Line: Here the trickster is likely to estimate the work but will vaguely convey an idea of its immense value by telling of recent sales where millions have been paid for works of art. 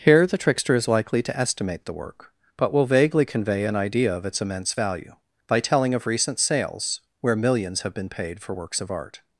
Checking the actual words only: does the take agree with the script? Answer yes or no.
yes